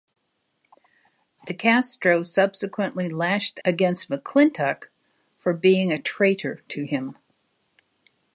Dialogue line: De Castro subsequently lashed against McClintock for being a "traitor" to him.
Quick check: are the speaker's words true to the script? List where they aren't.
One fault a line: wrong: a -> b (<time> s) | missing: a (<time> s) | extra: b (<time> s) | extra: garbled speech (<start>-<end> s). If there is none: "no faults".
no faults